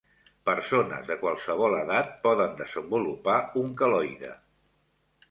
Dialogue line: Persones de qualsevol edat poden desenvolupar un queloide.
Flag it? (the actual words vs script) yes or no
no